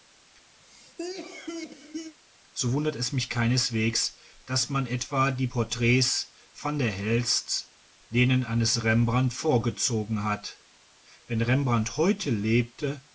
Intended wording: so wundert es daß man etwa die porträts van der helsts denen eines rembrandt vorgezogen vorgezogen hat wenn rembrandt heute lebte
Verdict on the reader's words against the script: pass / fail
fail